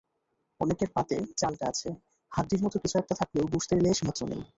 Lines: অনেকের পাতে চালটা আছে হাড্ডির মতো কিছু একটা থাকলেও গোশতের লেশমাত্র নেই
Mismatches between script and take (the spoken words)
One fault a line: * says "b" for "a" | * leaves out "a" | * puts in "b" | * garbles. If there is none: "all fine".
all fine